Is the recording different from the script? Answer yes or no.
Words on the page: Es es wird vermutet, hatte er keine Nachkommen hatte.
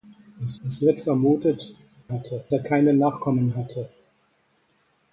no